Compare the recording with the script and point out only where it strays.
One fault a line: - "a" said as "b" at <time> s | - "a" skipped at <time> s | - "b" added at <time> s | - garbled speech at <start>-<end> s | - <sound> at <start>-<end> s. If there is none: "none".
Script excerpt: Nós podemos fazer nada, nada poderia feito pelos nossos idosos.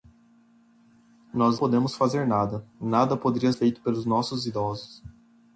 none